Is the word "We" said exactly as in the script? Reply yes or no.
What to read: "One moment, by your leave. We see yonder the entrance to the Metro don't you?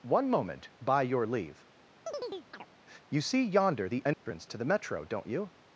no